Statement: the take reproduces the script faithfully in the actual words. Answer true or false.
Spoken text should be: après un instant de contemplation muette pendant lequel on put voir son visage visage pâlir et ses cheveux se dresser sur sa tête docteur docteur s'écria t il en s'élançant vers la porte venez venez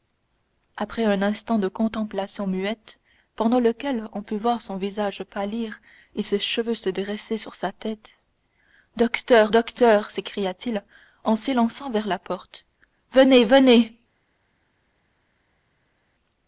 false